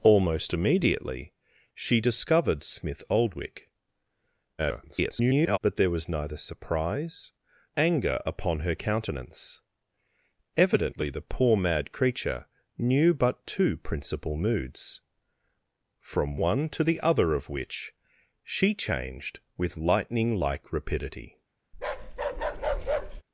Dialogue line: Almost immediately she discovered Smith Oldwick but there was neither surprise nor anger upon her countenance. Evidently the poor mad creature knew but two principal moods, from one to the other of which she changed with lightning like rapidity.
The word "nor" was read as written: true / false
false